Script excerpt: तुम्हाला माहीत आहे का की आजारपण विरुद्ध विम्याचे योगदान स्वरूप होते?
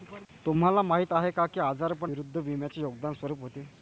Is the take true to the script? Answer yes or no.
yes